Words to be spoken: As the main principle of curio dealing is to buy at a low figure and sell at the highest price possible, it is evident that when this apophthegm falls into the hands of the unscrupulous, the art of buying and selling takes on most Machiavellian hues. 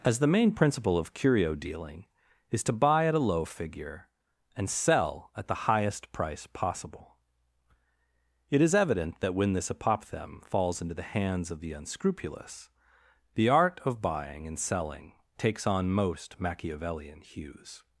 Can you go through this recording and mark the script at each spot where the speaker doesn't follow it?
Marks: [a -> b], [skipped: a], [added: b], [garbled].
As the main principle of curio dealing is to buy at a low figure and sell at the highest price possible, it is evident that when this apophthegm falls into the hands of the unscrupulous, the art of buying and selling takes on most Machiavellian hues.